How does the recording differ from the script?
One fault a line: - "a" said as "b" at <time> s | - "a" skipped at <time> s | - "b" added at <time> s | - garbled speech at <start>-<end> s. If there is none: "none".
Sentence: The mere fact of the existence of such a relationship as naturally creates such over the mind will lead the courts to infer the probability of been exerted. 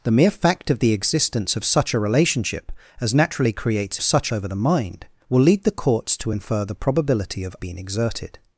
none